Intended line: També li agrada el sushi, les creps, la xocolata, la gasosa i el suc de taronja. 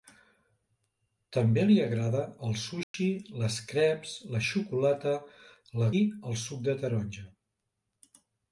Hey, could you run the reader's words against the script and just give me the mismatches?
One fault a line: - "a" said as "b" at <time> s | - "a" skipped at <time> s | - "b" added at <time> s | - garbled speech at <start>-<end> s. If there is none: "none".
- "gasosa" skipped at 5.9 s